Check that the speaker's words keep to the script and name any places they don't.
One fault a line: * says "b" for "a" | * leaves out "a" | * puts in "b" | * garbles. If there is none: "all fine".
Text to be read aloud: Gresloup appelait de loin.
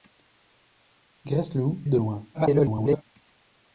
* leaves out "appelait"
* garbles